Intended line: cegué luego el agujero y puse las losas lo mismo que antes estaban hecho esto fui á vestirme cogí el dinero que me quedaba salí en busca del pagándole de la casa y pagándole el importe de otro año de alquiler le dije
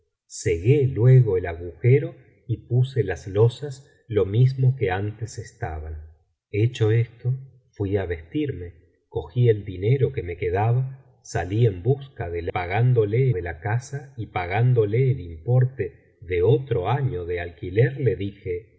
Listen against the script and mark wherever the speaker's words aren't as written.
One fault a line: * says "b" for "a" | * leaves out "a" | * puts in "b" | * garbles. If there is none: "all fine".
all fine